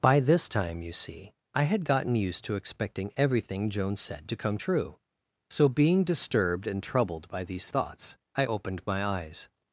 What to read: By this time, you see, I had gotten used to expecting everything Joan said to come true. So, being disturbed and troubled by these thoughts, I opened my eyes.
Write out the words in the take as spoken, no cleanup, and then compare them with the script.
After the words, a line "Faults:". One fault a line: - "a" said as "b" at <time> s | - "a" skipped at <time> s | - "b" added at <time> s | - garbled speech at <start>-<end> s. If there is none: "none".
By this time, you see, I had gotten used to expecting everything Joan said to come true. So, being disturbed and troubled by these thoughts, I opened my eyes.
Faults:
none